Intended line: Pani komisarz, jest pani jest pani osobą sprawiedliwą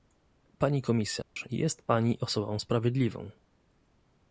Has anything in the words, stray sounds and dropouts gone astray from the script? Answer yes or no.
yes